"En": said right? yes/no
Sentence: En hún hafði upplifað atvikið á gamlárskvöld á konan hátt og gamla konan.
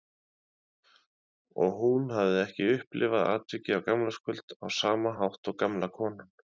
no